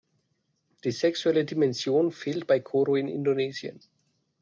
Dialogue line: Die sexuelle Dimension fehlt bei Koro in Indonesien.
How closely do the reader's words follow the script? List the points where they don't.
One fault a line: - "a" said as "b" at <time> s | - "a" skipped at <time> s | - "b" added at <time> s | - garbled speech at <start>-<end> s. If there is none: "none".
none